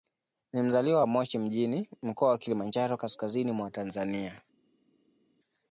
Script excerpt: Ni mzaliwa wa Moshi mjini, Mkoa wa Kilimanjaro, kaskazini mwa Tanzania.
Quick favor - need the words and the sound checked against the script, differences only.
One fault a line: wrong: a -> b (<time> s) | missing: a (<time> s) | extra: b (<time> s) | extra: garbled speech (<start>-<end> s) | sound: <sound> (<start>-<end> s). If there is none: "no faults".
no faults